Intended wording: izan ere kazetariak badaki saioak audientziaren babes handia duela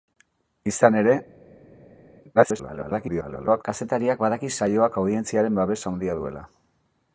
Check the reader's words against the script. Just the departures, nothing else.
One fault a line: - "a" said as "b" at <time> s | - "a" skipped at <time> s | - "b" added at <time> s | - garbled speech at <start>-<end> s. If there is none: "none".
- garbled speech at 2.3-3.6 s